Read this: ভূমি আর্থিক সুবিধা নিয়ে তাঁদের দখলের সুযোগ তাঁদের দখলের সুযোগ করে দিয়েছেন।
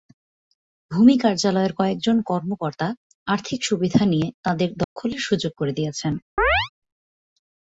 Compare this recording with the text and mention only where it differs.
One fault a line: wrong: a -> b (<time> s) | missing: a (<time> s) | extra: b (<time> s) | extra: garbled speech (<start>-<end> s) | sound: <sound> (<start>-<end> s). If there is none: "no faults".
extra: কার্যালয়ের কয়েকজন কর্মকর্তা (1.2 s)
sound: dropout (4.8-5.0 s)
missing: তাঁদের দখলের সুযোগ (5.5 s)
sound: chirp (6.4-6.7 s)